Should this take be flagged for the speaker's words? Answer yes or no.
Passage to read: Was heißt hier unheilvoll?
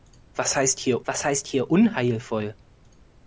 yes